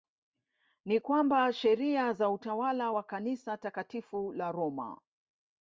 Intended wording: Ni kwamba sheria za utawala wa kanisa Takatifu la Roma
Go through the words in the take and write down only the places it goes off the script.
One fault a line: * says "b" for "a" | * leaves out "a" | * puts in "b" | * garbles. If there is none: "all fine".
all fine